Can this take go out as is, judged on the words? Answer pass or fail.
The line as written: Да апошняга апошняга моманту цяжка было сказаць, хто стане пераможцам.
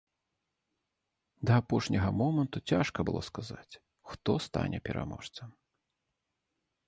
fail